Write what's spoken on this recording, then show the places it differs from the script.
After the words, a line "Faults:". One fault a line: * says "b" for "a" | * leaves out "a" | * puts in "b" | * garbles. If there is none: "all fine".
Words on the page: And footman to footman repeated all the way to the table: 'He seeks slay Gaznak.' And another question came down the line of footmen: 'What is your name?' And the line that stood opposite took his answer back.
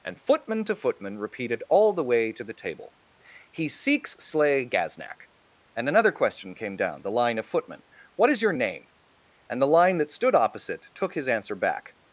And footman to footman repeated all the way to the table: 'He seeks slay Gaznak.' And another question came down the line of footmen: 'What is your name?' And the line that stood opposite took his answer back.
Faults:
all fine